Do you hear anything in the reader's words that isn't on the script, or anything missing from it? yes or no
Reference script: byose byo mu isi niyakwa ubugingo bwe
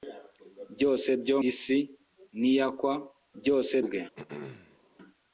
yes